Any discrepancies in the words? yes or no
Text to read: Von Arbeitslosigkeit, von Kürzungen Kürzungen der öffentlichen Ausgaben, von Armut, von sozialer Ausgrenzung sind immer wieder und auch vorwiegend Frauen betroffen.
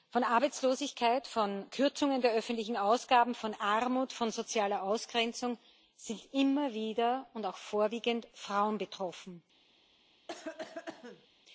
yes